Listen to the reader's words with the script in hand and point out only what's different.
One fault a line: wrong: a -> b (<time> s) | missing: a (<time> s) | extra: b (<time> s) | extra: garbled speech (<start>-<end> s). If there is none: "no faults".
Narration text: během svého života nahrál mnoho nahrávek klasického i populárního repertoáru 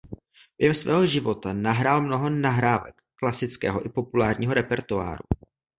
no faults